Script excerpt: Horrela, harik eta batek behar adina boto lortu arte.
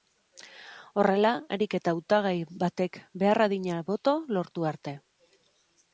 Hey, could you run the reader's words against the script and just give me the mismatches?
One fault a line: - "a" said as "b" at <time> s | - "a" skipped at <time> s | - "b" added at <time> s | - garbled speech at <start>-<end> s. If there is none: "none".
- "hautagai" added at 1.9 s